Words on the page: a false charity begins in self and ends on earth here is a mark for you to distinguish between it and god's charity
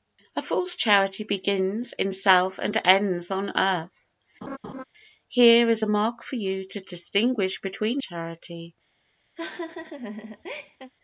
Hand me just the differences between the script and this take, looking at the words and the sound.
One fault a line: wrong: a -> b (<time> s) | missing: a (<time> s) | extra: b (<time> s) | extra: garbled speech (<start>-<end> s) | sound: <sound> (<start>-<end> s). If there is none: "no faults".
sound: laugh (4.4-4.8 s)
missing: it and god's (8.0 s)
sound: laugh (9.4-10.9 s)